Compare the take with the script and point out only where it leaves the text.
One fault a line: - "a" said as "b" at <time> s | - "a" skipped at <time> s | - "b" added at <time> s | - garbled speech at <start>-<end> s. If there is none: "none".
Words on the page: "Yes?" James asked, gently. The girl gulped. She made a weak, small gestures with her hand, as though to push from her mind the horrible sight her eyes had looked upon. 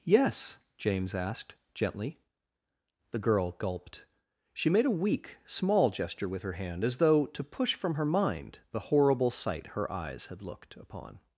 - "gestures" said as "gesture" at 5.9 s